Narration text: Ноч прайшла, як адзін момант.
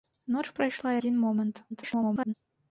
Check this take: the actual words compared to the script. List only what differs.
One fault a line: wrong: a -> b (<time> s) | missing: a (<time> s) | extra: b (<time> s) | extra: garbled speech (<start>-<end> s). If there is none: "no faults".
missing: як (0.9 s)
extra: garbled speech (1.7-2.3 s)